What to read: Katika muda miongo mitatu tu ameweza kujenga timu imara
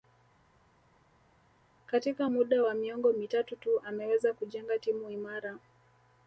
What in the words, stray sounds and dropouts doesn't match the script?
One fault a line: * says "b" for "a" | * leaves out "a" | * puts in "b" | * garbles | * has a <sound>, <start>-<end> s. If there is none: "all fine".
* puts in "wa"